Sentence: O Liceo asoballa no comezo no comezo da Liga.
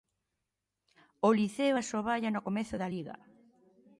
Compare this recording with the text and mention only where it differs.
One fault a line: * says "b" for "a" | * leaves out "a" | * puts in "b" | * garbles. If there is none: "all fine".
* leaves out "no comezo"